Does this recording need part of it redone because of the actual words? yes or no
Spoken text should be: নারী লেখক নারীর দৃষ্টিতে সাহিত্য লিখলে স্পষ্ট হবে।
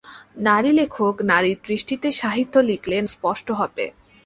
no